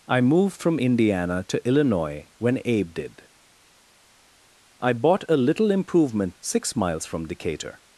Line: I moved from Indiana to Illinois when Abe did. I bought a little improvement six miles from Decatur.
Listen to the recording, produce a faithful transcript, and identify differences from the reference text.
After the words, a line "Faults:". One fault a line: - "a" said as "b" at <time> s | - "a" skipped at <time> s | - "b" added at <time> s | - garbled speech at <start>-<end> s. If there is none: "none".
I moved from Indiana to Illinois when Abe did. I bought a little improvement six miles from Decatur.
Faults:
none